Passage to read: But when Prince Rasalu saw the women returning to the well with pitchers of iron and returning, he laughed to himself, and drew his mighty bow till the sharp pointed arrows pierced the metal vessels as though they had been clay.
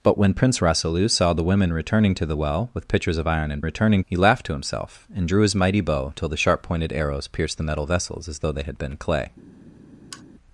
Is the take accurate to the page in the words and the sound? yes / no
no